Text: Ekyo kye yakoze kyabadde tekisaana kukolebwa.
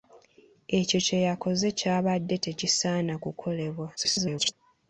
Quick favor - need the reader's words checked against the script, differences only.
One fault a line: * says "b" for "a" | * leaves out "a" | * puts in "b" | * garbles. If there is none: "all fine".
* garbles